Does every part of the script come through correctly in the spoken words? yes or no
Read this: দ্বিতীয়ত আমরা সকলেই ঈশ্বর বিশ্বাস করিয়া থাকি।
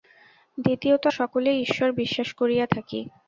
no